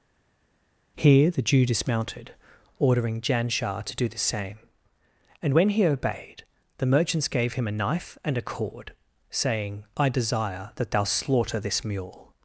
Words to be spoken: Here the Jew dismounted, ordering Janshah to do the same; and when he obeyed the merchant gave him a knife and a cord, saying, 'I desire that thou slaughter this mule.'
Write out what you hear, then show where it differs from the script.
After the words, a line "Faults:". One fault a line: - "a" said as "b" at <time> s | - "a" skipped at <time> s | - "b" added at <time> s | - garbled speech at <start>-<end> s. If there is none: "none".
Here the Jew dismounted, ordering Janshah to do the same; and when he obeyed the merchants gave him a knife and a cord, saying, 'I desire that thou slaughter this mule.'
Faults:
- "merchant" said as "merchants" at 6.9 s